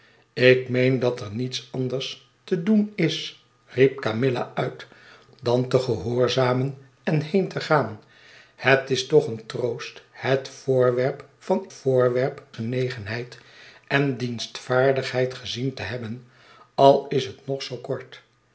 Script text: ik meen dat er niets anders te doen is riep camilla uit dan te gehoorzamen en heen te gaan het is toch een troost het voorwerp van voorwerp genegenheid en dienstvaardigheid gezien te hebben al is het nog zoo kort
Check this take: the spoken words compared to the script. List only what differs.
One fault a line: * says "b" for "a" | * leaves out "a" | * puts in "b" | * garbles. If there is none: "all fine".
all fine